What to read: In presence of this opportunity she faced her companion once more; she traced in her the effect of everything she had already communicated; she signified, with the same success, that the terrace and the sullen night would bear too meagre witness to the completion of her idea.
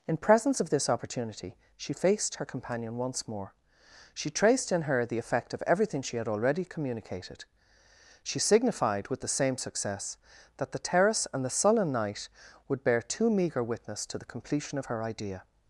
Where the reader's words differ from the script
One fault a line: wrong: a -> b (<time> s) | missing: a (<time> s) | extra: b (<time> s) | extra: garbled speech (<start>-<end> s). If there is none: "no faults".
no faults